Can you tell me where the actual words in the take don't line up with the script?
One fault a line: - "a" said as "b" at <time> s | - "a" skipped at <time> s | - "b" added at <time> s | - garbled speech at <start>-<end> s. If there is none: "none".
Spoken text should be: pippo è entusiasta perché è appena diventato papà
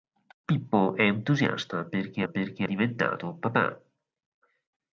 - "appena" said as "perché" at 2.3 s